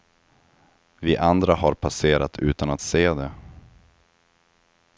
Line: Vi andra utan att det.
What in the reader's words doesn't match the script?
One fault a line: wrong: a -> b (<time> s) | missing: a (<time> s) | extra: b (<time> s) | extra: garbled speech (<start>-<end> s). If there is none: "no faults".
extra: har passerat (1.6 s)
extra: se (2.8 s)